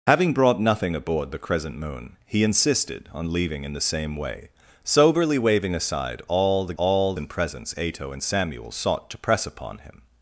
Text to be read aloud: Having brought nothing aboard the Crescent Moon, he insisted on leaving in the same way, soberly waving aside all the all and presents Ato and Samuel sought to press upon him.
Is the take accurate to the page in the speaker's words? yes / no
yes